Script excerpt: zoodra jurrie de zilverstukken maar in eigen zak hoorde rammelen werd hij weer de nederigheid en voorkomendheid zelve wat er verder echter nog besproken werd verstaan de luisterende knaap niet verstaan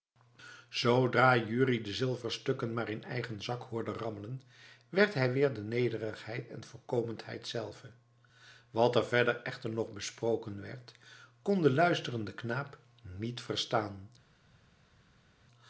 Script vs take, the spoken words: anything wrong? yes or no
yes